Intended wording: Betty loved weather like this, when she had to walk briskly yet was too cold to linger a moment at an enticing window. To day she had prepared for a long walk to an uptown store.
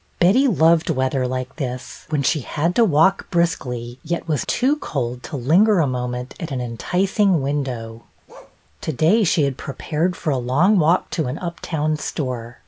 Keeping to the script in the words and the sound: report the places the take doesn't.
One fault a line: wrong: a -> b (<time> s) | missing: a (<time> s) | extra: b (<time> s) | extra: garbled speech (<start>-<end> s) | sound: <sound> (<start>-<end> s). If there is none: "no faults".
sound: bark (8.3-8.6 s)